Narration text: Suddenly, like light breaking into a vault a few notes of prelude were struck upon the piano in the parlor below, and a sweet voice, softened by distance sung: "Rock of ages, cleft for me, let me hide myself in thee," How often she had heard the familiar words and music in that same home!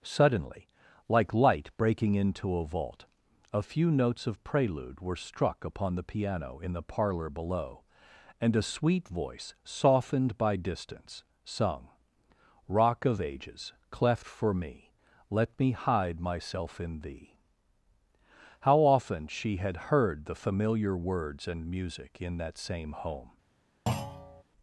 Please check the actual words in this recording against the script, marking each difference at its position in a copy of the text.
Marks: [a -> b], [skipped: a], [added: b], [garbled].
Suddenly, like light breaking into a vault a few notes of prelude were struck upon the piano in the parlor below, and a sweet voice, softened by distance sung: "Rock of ages, cleft for me, let me hide myself in thee," How often she had heard the familiar words and music in that same home!